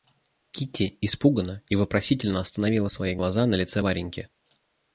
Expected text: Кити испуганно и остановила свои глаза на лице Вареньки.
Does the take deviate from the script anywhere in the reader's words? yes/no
yes